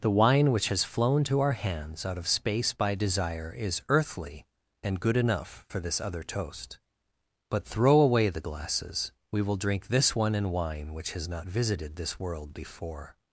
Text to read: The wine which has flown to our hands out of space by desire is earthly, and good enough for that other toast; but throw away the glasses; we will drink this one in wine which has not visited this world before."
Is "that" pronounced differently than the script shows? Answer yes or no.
yes